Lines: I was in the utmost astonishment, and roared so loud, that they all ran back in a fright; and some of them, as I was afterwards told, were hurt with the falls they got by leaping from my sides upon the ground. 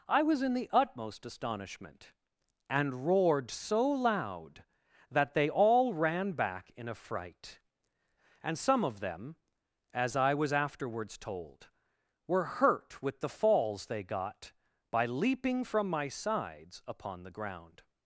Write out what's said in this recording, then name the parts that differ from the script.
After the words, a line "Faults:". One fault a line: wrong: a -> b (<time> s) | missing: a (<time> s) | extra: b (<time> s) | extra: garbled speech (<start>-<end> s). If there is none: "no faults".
I was in the utmost astonishment, and roared so loud, that they all ran back in a fright; and some of them, as I was afterwards told, were hurt with the falls they got by leaping from my sides upon the ground.
Faults:
no faults